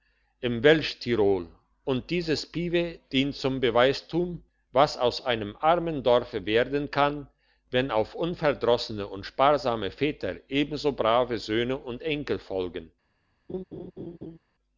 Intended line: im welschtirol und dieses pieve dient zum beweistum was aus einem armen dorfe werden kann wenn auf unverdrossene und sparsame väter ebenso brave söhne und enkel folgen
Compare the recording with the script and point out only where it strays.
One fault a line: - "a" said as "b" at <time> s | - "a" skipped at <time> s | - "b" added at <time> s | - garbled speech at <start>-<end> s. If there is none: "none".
none